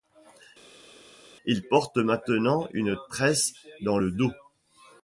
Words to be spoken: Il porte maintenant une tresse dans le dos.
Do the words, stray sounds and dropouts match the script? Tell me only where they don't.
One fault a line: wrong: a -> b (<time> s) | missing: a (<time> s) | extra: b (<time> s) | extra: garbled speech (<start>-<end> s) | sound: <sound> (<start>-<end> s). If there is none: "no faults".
no faults